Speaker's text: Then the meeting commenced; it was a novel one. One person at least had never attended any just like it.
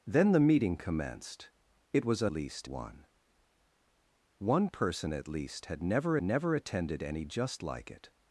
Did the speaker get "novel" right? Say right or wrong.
wrong